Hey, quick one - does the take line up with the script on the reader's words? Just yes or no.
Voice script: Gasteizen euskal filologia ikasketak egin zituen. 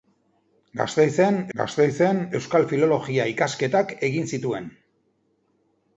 no